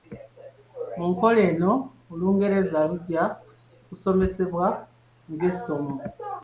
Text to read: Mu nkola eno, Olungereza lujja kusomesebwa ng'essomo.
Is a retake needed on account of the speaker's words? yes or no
no